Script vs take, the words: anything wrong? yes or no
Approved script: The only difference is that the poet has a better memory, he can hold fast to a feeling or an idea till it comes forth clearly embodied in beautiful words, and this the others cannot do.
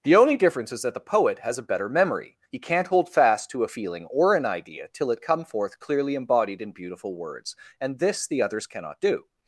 yes